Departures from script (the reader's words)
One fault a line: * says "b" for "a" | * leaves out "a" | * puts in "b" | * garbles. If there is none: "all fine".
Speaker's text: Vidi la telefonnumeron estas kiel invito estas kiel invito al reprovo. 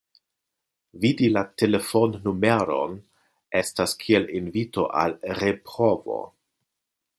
* leaves out "estas kiel invito"